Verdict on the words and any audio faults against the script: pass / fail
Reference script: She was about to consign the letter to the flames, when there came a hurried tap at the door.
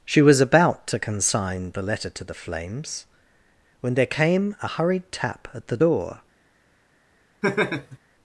fail